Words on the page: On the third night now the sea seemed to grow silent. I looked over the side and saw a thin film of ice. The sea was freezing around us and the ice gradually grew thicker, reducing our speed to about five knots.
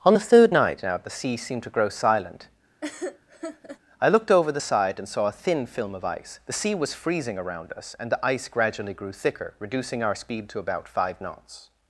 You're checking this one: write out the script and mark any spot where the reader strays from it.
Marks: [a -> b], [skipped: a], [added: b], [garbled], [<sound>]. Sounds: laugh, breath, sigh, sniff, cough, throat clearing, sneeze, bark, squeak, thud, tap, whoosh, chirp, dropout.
On the third night now the sea seemed to grow silent. [laugh] I looked over the side and saw a thin film of ice. The sea was freezing around us and the ice gradually grew thicker, reducing our speed to about five knots.